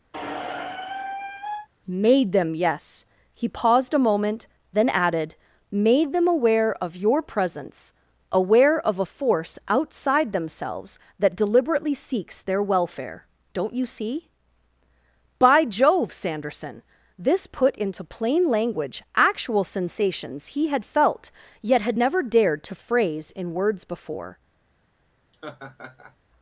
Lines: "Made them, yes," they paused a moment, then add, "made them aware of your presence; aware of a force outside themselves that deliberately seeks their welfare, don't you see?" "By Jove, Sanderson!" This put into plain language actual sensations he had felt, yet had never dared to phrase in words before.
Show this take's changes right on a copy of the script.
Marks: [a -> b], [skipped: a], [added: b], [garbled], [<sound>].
[squeak] "Made them, yes," [they -> he] paused a moment, then [add, -> added] "made them aware of your presence; aware of a force outside themselves that deliberately seeks their welfare, don't you see?" "By Jove, Sanderson!" This put into plain language actual sensations he had felt, yet had never dared to phrase in words before. [laugh]